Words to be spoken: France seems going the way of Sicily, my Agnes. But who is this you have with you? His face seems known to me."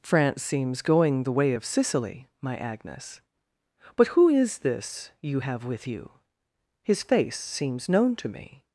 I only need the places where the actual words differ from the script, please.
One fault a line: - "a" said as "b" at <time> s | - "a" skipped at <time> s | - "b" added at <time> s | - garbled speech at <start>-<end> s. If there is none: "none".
none